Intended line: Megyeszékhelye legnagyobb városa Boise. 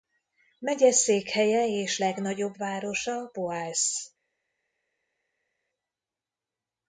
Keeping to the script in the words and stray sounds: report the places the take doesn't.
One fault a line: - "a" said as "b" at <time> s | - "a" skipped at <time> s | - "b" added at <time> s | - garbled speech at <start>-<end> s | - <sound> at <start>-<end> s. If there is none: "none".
- "és" added at 1.6 s